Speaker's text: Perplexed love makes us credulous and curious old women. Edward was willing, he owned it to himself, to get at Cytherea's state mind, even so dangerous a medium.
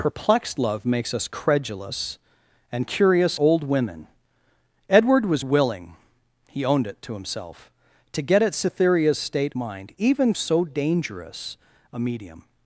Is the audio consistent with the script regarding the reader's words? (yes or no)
yes